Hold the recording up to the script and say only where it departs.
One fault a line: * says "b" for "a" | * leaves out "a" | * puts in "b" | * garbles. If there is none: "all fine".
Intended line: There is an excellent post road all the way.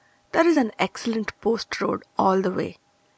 all fine